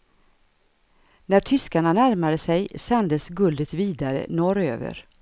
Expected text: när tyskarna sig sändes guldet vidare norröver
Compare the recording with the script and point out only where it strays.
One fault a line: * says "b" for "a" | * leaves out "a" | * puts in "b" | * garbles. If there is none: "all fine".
* puts in "närmade"